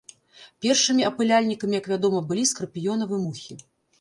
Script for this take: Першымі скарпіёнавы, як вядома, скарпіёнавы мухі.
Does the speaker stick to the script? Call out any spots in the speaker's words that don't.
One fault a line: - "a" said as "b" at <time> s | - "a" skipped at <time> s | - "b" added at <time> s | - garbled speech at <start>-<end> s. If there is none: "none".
- "скарпіёнавы" said as "апыляльнікамі" at 1.1 s
- "былі" added at 2.3 s